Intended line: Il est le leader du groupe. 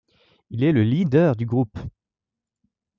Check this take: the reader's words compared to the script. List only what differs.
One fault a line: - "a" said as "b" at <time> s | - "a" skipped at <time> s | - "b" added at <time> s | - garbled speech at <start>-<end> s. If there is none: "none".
none